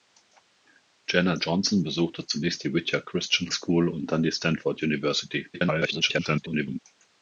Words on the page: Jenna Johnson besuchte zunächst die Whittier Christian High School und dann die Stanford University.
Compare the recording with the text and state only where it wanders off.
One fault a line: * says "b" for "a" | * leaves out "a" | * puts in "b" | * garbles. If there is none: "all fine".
* leaves out "High"
* garbles